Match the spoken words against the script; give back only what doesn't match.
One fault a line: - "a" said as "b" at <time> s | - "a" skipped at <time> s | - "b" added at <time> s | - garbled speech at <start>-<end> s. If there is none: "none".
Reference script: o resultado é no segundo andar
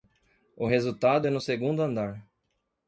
none